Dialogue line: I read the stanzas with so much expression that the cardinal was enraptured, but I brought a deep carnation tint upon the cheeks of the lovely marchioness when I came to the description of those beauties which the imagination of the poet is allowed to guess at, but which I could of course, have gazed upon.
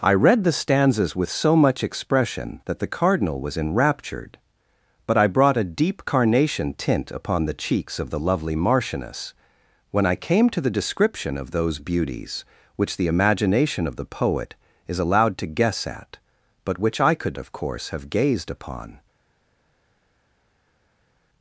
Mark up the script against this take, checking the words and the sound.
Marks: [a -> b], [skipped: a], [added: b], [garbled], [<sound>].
I read the stanzas with so much expression that the cardinal was enraptured, but I brought a deep carnation tint upon the cheeks of the lovely marchioness when I came to the description of those beauties which the imagination of the poet is allowed to guess at, but which I could of course, have gazed upon.